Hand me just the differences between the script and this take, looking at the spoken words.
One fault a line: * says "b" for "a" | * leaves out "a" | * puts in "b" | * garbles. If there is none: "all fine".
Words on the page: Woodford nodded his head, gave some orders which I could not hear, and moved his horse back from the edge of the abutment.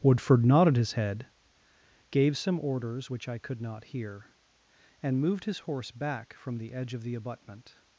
all fine